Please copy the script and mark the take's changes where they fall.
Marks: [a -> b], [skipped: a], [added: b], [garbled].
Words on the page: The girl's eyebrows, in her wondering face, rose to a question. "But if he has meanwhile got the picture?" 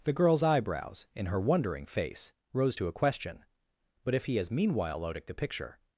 The girl's eyebrows, in her wondering face, rose to a question. "But if he has meanwhile [got -> odic] the picture?"